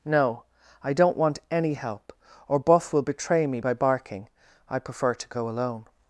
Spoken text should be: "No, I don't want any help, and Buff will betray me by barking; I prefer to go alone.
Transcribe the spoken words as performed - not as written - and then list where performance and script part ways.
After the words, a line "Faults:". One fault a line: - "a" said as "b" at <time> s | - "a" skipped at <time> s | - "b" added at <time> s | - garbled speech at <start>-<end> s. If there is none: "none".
"No, I don't want any help, or Buff will betray me by barking; I prefer to go alone.
Faults:
- "and" said as "or" at 2.5 s